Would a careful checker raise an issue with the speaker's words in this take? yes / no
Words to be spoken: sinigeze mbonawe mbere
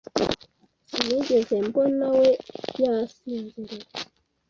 yes